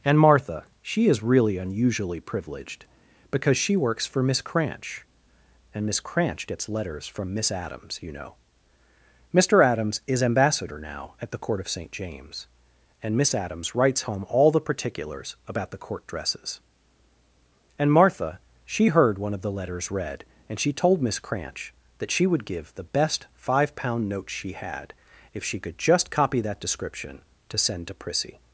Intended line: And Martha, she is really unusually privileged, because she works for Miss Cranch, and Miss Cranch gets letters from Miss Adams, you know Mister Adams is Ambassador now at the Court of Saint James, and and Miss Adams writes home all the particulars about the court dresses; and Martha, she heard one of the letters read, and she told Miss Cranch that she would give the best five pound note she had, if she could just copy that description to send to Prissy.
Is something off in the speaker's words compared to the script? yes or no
yes